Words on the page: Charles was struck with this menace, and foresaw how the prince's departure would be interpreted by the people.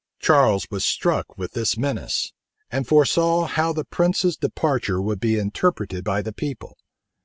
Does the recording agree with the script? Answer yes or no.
yes